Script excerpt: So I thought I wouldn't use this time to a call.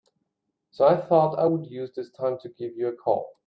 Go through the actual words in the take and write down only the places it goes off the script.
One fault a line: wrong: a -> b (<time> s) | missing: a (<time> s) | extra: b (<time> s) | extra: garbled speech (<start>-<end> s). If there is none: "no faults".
wrong: wouldn't -> would (1.4 s)
extra: give you (2.5 s)